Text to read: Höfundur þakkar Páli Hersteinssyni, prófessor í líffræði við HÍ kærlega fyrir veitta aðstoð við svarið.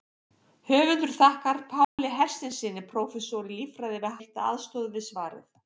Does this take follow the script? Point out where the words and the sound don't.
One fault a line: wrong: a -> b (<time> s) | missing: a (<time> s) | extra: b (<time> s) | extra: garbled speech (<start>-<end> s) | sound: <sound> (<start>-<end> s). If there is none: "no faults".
sound: dropout (1.8-2.0 s)
missing: HÍ kærlega fyrir (4.2 s)